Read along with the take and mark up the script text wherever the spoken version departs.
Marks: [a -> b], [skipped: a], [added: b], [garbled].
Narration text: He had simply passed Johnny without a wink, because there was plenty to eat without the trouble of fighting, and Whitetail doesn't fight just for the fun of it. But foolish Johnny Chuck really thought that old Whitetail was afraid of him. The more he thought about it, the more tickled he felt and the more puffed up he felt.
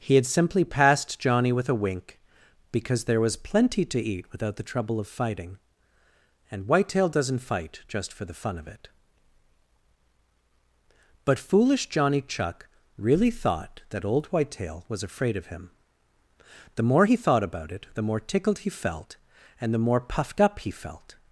He had simply passed Johnny [without -> with] a wink, because there was plenty to eat without the trouble of fighting, and Whitetail doesn't fight just for the fun of it. But foolish Johnny Chuck really thought that old Whitetail was afraid of him. The more he thought about it, the more tickled he felt and the more puffed up he felt.